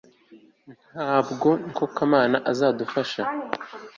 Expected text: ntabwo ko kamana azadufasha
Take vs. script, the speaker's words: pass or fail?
pass